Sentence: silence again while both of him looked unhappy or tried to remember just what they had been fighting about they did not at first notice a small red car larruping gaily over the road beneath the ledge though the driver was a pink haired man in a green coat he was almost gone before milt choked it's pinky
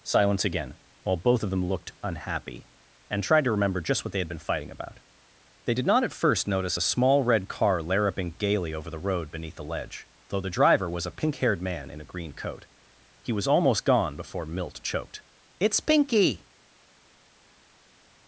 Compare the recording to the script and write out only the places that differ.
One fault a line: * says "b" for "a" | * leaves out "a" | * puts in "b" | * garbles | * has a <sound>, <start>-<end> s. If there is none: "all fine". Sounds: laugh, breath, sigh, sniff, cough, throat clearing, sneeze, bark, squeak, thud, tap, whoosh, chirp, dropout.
* says "them" for "him"
* says "and" for "or"